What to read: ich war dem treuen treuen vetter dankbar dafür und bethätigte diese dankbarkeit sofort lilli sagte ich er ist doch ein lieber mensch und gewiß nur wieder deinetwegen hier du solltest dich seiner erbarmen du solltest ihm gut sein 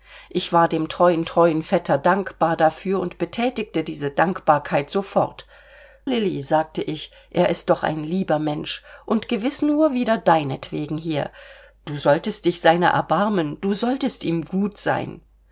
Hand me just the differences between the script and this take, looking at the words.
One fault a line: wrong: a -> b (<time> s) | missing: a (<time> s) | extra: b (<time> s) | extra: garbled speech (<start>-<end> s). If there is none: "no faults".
no faults